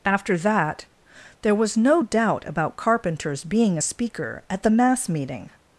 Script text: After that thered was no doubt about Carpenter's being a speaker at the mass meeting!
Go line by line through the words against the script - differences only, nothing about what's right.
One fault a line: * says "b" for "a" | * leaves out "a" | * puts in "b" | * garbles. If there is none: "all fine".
* says "there" for "thered"